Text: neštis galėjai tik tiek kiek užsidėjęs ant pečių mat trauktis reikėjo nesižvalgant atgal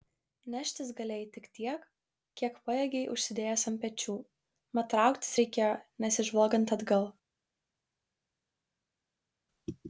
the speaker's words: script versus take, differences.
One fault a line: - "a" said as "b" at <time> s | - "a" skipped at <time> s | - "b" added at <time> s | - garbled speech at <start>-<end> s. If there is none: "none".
- "pajėgei" added at 2.7 s